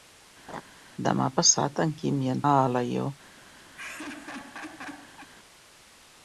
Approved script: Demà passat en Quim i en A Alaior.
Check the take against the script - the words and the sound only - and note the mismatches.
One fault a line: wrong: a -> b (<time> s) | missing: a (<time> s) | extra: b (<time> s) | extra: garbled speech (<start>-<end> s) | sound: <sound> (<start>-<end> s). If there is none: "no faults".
sound: laugh (0.5-0.6 s)
sound: laugh (3.7-5.3 s)